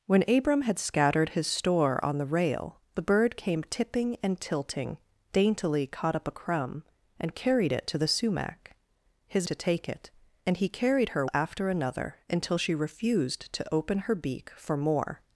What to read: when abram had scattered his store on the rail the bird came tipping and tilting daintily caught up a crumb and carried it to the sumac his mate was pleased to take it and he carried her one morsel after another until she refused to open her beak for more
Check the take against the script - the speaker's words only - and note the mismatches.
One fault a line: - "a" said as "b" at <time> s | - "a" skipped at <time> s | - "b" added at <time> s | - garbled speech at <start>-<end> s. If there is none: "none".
- "mate was pleased" skipped at 9.5 s
- "one morsel" skipped at 11.3 s